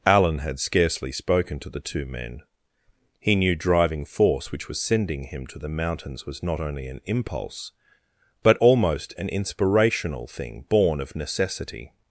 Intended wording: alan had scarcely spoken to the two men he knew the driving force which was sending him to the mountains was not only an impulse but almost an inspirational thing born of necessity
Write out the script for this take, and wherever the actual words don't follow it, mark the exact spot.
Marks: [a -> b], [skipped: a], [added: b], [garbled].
alan had scarcely spoken to the two men he knew [skipped: the] driving force which was sending him to the mountains was not only an impulse but almost an inspirational thing born of necessity